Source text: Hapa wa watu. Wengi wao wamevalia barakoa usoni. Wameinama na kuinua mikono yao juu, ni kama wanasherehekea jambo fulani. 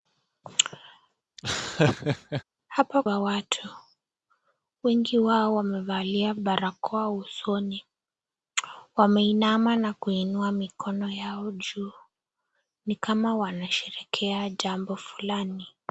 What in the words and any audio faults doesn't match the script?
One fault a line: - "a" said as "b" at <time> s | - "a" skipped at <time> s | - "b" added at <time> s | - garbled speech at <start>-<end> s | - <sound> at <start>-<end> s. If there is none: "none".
- laugh at 1.4-2.4 s